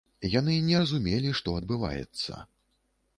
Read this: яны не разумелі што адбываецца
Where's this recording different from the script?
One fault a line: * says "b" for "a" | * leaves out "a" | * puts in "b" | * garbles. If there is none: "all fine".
all fine